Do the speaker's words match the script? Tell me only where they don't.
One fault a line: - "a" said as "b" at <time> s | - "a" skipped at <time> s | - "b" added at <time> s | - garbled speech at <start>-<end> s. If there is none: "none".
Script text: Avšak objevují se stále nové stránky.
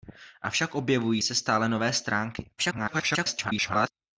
- garbled speech at 2.6-3.9 s